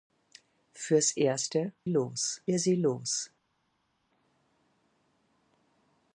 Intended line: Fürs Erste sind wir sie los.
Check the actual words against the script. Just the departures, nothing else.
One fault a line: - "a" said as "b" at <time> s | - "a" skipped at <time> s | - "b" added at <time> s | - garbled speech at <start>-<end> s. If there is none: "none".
- "sind" said as "los" at 1.9 s